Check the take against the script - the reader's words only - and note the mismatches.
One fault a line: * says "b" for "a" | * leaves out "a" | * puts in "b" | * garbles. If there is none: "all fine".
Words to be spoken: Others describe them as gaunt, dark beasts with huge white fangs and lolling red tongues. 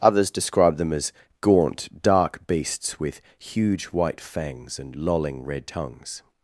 all fine